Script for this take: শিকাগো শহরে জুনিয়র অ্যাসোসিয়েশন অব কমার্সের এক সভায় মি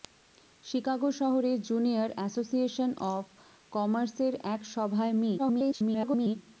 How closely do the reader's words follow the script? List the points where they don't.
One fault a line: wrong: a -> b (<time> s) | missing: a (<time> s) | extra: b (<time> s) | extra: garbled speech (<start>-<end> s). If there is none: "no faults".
extra: garbled speech (5.4-6.4 s)